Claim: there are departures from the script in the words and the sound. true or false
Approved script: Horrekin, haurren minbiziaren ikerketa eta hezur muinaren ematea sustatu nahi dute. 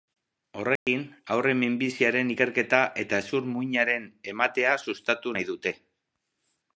true